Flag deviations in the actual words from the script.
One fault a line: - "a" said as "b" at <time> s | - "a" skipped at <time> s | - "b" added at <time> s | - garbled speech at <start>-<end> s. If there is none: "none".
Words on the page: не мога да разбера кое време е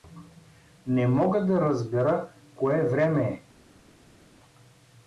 none